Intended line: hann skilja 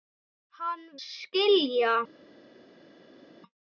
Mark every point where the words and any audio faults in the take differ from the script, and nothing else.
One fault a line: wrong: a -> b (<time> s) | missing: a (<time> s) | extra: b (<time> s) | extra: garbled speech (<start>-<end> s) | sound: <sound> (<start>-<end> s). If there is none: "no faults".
no faults